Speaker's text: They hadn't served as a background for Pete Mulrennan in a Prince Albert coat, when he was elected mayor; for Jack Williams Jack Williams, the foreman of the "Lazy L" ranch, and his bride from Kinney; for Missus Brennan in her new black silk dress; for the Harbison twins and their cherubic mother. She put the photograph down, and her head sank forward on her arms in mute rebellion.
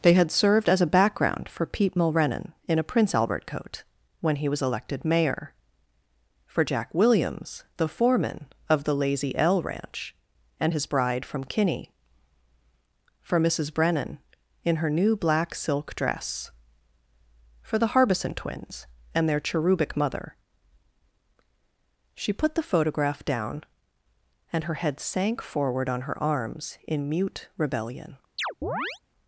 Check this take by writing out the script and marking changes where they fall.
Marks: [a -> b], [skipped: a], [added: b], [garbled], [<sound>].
They [hadn't -> had] served as a background for Pete Mulrennan in a Prince Albert coat, when he was elected mayor; for Jack Williams [skipped: Jack Williams,] the foreman of the "Lazy L" ranch, and his bride from Kinney; for Missus Brennan in her new black silk dress; for the Harbison twins and their cherubic mother. She put the photograph down, and her head sank forward on her arms in mute rebellion. [chirp]